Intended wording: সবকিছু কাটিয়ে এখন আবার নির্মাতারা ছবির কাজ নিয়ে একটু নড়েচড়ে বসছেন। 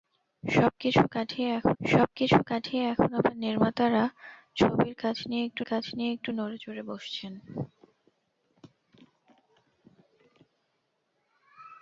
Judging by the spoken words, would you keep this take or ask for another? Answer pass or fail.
fail